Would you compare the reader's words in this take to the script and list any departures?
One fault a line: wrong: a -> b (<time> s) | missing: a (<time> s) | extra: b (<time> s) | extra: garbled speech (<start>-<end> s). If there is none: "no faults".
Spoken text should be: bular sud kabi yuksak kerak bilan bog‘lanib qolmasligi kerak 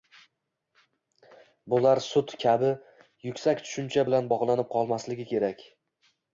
wrong: kerak -> tushuncha (3.7 s)